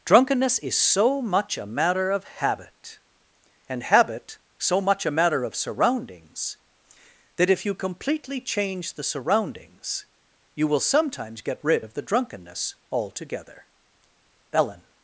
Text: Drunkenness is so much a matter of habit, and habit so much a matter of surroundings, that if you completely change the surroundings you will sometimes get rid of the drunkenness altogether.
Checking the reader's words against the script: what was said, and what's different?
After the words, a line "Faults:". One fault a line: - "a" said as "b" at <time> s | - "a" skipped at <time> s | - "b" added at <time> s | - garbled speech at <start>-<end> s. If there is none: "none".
Drunkenness is so much a matter of habit, and habit so much a matter of surroundings, that if you completely change the surroundings you will sometimes get rid of the drunkenness altogether. Ellen
Faults:
- "Ellen" added at 14.5 s